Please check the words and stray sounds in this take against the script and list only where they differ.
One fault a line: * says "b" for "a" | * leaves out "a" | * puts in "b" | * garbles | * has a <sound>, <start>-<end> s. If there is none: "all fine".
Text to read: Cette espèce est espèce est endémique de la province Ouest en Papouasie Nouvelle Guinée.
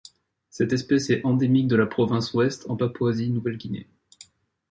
* leaves out "espèce est"